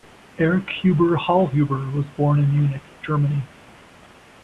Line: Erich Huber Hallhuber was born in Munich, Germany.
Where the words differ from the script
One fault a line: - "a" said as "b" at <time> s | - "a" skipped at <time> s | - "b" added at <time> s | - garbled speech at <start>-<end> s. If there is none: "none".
none